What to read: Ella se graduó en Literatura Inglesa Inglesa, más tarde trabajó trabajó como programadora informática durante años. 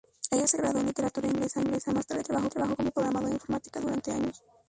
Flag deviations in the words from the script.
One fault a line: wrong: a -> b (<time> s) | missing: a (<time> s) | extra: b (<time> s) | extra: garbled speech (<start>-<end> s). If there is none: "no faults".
no faults